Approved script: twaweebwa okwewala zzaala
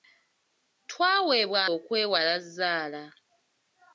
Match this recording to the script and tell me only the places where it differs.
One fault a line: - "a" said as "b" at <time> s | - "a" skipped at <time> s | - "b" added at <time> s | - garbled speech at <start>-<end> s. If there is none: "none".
none